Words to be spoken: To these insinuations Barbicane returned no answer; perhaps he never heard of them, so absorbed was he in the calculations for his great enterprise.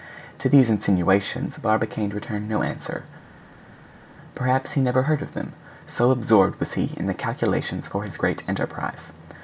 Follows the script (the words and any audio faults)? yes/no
yes